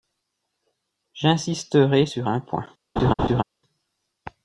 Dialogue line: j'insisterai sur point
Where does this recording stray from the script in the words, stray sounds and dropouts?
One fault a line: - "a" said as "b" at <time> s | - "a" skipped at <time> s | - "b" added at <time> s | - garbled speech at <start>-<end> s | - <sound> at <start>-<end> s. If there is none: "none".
- "un" added at 2.3 s
- laugh at 3.0-3.4 s